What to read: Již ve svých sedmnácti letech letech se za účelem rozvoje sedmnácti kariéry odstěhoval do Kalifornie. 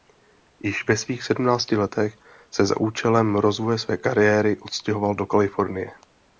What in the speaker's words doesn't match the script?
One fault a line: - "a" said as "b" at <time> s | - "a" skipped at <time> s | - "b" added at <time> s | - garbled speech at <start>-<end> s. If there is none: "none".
- "letech" skipped at 2.2 s
- "sedmnácti" said as "své" at 3.8 s